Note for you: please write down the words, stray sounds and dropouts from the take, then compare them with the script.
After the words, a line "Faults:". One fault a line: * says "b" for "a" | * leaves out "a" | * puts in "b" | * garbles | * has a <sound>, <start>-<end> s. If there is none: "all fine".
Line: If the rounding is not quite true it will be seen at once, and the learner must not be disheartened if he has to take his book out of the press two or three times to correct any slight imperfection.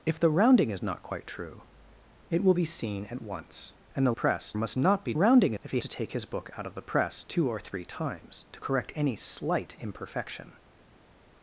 If the rounding is not quite true it will be seen at once, and the press must not be rounding if he to take his book out of the press two or three times to correct any slight imperfection.
Faults:
* says "press" for "learner"
* says "rounding" for "disheartened"
* leaves out "has"